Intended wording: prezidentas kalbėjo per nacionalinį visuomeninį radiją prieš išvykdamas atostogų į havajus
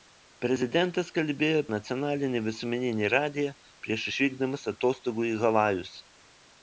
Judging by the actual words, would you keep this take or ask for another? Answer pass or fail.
fail